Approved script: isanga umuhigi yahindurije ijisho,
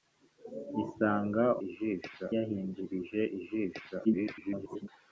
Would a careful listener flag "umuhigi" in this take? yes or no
yes